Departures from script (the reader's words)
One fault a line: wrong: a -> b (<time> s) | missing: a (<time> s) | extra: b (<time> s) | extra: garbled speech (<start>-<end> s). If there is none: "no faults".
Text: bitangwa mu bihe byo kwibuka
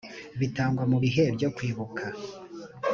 no faults